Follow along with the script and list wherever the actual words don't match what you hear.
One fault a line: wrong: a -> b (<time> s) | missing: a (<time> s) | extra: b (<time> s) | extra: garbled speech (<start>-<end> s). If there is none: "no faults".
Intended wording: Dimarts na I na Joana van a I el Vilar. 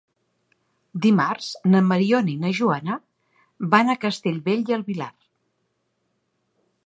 extra: Mariona (1.9 s)
extra: Castellbell (4.1 s)